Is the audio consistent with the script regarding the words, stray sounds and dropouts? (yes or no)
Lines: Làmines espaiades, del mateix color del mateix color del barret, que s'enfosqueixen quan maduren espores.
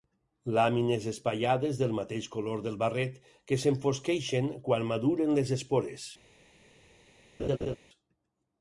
no